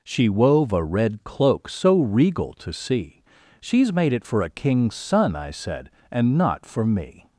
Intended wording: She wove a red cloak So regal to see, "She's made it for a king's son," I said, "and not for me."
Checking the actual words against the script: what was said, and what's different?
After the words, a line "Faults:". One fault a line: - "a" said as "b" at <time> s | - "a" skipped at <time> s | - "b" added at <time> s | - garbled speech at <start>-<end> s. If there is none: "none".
She wove a red cloak So regal to see, "She's made it for a king's son," I said, "and not for me."
Faults:
none